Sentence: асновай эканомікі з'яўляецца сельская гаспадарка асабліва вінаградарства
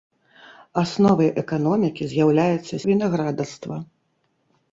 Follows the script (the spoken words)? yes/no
no